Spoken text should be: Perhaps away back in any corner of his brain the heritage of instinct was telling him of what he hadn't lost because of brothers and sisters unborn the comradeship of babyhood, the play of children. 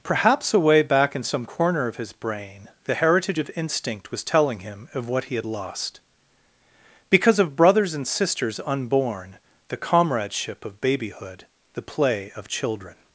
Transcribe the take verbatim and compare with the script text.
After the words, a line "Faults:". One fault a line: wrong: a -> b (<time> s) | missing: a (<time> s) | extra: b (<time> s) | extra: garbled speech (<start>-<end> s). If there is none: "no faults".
Perhaps away back in some corner of his brain the heritage of instinct was telling him of what he had lost because of brothers and sisters unborn the comradeship of babyhood, the play of children.
Faults:
wrong: any -> some (1.2 s)
wrong: hadn't -> had (5.3 s)